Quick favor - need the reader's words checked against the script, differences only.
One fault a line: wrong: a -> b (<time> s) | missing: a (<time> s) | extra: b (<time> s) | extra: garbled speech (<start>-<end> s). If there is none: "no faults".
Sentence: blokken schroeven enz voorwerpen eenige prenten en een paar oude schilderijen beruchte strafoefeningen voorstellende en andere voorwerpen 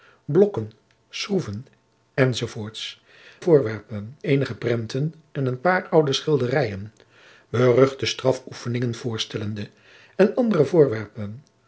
no faults